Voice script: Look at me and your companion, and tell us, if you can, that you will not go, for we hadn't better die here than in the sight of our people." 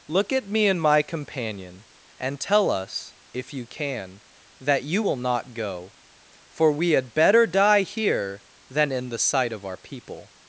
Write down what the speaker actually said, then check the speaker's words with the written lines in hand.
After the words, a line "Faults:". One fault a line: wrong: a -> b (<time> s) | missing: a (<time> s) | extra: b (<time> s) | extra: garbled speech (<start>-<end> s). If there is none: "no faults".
Look at me and my companion, and tell us, if you can, that you will not go, for we had better die here than in the sight of our people."
Faults:
wrong: your -> my (0.8 s)
wrong: hadn't -> had (6.9 s)